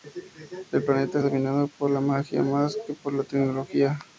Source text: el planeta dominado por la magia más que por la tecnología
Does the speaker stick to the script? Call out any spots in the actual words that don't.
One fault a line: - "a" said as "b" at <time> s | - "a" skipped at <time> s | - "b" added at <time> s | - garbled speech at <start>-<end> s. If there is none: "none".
none